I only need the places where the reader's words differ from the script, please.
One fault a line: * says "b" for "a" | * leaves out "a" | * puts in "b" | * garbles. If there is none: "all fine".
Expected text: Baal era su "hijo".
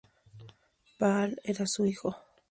all fine